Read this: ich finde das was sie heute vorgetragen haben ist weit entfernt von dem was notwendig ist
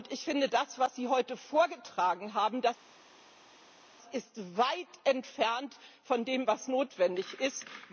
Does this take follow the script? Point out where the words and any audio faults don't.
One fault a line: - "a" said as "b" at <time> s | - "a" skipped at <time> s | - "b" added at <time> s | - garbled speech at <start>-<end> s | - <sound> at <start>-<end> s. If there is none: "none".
none